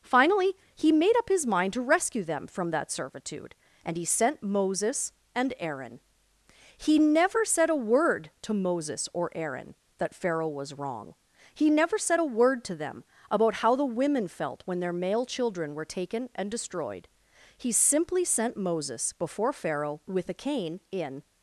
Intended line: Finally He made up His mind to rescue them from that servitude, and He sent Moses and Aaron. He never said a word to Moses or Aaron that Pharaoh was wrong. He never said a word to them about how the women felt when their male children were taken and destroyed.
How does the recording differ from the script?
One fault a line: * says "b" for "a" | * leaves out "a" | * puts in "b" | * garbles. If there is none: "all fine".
* puts in "He simply sent Moses before Pharaoh with a cane in"